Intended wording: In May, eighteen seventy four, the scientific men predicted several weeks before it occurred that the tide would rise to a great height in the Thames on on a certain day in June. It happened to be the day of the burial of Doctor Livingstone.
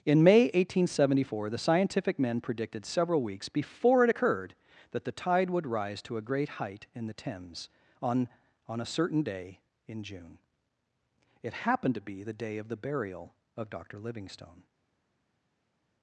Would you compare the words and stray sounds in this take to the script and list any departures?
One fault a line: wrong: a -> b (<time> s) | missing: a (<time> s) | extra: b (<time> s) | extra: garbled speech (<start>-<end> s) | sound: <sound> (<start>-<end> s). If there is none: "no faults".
no faults